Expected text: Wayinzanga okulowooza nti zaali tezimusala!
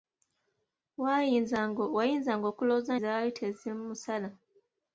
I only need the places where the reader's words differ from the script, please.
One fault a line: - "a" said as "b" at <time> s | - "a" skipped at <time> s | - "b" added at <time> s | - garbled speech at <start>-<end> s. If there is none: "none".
- "nti" skipped at 2.9 s